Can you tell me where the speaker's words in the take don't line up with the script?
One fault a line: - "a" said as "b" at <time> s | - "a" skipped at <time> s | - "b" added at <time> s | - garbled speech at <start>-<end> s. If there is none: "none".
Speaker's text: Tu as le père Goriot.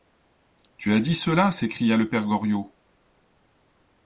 - "dit cela s'écria" added at 1.0 s